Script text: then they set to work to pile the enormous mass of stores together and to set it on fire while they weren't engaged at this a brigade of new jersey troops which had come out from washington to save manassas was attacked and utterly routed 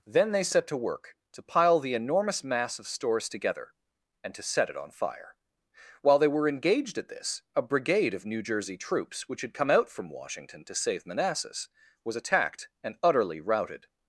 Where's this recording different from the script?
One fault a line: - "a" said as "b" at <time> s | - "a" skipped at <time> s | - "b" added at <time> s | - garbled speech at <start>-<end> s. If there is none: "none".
- "weren't" said as "were" at 6.3 s